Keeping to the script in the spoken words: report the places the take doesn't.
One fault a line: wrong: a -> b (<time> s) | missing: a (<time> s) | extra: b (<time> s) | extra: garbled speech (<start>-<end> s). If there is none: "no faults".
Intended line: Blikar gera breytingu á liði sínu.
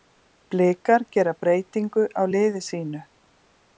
no faults